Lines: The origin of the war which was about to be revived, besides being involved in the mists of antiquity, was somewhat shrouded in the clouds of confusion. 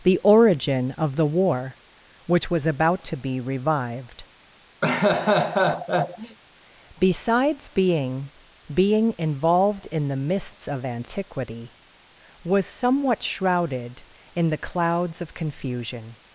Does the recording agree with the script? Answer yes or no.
no